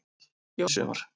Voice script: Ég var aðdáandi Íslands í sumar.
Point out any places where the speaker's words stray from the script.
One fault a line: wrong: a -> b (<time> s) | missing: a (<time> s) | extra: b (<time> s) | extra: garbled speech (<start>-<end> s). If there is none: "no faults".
missing: var aðdáandi Íslands (0.7 s)